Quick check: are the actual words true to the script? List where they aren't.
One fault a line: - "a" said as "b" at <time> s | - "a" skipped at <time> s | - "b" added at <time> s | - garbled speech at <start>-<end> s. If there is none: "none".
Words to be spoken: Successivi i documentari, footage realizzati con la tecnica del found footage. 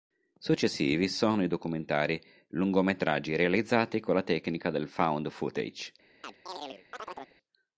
- "sono" added at 1.1 s
- "footage" said as "lungometraggi" at 2.5 s